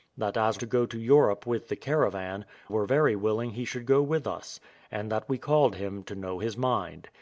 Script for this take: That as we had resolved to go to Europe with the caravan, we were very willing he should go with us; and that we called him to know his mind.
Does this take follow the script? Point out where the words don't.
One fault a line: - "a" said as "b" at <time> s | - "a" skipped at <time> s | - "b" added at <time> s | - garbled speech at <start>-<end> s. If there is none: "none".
- "we had resolved" skipped at 0.6 s
- "we" skipped at 2.4 s